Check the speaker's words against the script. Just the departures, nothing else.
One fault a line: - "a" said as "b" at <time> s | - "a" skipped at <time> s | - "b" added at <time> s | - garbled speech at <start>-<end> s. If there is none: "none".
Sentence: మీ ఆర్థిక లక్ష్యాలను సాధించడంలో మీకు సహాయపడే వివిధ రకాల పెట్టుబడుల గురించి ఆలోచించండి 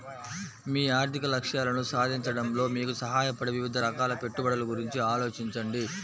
none